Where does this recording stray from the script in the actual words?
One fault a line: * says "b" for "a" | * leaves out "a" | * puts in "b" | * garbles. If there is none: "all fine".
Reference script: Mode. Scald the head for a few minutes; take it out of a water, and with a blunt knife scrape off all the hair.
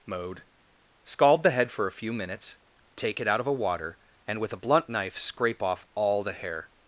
all fine